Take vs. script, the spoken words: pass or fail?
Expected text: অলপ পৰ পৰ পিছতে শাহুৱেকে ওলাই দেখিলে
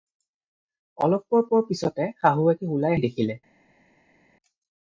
pass